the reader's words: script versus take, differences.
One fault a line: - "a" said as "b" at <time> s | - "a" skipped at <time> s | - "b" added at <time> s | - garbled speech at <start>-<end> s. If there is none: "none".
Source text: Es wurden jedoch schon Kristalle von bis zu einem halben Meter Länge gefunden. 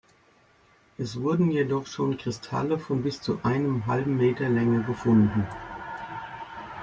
none